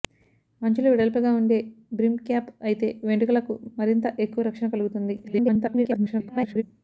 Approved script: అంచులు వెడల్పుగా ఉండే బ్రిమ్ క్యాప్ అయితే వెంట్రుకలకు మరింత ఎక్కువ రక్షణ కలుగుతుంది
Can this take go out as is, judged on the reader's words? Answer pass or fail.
fail